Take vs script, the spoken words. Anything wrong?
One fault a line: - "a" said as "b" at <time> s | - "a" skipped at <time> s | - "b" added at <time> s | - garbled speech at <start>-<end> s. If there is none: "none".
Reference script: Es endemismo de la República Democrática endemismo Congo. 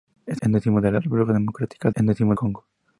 none